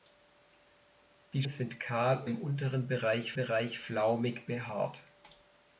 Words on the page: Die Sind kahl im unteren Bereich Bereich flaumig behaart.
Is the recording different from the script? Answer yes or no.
no